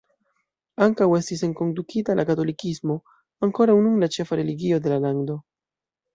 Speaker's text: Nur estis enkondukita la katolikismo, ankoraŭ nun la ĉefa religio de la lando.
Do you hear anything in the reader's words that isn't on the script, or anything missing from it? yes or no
yes